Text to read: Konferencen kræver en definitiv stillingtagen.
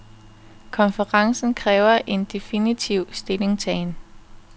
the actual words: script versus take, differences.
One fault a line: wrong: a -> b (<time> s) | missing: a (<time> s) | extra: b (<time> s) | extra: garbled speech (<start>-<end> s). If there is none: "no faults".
no faults